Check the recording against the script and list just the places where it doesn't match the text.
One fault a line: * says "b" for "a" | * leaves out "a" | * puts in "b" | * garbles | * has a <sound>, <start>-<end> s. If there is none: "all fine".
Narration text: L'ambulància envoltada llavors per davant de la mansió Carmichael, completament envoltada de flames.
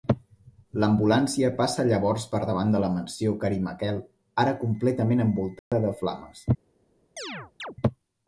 * says "passa" for "envoltada"
* puts in "ara"
* has a dropout, 5.6-5.7 s
* has a chirp, 7.2-7.8 s